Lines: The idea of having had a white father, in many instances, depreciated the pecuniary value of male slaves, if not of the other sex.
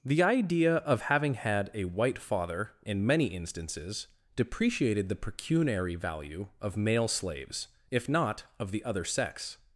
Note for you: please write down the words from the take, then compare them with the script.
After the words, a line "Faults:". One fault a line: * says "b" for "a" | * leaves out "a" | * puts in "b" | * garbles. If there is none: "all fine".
The idea of having had a white father, in many instances, depreciated the pecuniary value of male slaves, if not of the other sex.
Faults:
all fine